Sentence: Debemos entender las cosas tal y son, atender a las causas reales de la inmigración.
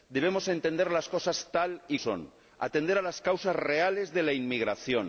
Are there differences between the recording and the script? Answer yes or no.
no